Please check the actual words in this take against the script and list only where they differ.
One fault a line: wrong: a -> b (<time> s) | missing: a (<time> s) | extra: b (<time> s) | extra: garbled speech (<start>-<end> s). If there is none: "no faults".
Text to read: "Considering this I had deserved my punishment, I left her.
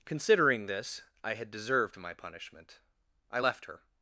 no faults